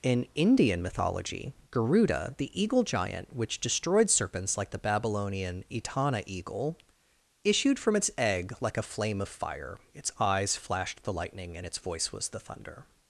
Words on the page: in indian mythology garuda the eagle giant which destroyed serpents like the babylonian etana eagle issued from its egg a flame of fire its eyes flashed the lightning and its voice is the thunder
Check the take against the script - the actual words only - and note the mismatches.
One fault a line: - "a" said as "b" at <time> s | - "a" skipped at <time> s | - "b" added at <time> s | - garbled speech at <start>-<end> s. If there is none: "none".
- "like" added at 8.6 s
- "is" said as "was" at 12.1 s